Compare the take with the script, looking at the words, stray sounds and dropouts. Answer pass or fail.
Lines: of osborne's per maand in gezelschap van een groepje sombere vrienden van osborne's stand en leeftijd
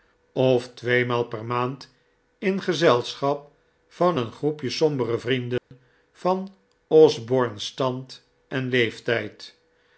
fail